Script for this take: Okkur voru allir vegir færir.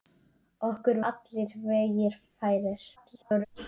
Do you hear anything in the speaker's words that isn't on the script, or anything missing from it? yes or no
yes